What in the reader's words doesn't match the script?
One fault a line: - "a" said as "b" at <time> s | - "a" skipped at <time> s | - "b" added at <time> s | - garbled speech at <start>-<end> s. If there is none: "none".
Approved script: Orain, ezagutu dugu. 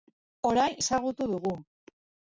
none